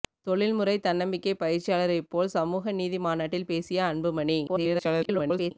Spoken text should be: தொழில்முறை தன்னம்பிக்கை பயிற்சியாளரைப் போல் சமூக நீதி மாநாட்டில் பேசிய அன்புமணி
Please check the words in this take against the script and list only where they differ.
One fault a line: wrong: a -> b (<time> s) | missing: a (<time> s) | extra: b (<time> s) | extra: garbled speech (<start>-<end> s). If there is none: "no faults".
extra: garbled speech (4.5-5.5 s)